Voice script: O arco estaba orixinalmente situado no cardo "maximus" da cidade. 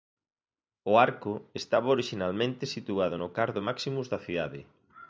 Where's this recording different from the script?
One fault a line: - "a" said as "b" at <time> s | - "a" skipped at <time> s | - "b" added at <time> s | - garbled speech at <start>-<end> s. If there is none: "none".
none